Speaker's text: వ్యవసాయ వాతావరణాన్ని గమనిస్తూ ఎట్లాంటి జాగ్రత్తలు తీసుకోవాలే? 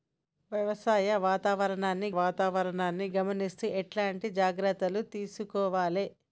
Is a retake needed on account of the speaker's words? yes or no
yes